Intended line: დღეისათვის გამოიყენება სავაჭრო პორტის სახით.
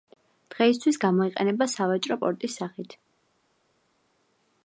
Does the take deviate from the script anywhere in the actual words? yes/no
no